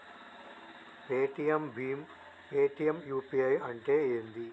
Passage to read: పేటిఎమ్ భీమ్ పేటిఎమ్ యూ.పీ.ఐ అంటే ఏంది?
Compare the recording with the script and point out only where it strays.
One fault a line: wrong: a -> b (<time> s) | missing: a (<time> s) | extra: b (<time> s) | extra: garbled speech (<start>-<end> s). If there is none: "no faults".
no faults